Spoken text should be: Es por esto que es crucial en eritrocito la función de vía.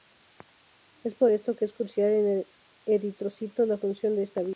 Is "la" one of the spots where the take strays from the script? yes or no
no